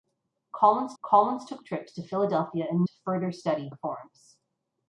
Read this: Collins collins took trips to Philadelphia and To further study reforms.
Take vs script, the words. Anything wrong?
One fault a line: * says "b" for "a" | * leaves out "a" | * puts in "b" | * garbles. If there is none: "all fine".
all fine